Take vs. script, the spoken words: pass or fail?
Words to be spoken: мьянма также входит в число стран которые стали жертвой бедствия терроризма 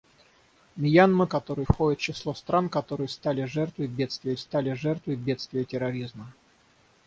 fail